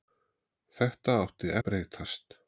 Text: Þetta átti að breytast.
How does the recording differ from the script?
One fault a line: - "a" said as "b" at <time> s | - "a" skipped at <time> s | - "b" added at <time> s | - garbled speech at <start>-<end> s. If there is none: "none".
none